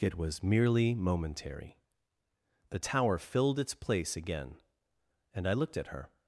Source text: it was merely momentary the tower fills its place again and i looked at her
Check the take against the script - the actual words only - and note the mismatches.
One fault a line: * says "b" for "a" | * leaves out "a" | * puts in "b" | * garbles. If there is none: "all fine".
* says "filled" for "fills"